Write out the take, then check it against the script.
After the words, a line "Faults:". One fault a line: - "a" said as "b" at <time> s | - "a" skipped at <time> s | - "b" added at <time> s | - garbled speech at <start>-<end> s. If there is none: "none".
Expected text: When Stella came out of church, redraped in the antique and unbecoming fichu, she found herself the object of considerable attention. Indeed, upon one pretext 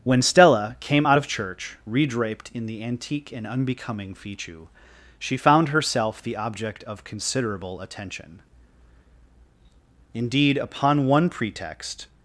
When Stella came out of church, redraped in the antique and unbecoming fichu, she found herself the object of considerable attention. Indeed, upon one pretext
Faults:
none